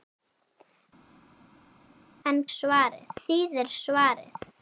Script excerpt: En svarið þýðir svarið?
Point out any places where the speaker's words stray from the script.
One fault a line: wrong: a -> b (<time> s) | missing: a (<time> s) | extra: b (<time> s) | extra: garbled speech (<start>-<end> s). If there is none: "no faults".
no faults